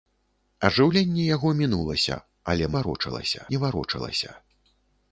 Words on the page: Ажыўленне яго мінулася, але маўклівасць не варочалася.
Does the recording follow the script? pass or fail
fail